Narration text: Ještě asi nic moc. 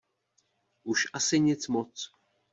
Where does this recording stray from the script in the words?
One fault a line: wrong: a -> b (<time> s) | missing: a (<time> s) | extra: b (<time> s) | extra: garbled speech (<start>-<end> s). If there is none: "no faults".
wrong: Ještě -> Už (0.8 s)